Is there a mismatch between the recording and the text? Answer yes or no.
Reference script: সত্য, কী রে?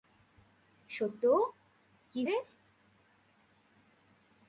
no